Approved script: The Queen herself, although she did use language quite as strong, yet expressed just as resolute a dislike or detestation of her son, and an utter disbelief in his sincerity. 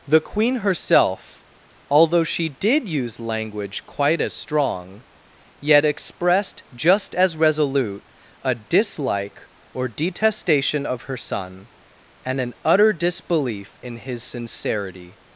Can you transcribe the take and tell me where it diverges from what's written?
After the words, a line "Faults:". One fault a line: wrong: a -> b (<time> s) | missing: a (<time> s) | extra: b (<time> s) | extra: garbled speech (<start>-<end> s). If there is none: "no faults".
The Queen herself, although she did use language quite as strong, yet expressed just as resolute a dislike or detestation of her son, and an utter disbelief in his sincerity.
Faults:
no faults